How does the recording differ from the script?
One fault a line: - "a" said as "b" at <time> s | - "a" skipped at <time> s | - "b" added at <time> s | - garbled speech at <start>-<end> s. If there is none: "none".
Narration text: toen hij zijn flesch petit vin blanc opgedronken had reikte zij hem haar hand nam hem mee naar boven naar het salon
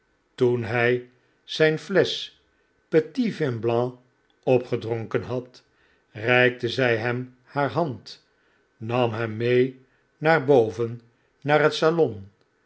none